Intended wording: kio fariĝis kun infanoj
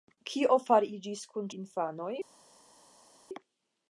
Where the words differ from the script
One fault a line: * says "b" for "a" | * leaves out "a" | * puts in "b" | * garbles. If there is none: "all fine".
all fine